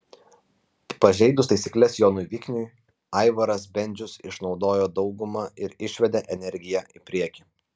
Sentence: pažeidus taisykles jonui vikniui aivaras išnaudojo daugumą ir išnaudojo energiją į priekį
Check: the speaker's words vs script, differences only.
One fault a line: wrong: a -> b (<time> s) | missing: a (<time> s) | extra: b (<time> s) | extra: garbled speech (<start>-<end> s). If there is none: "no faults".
extra: bendžius (3.8 s)
wrong: išnaudojo -> išvedė (5.9 s)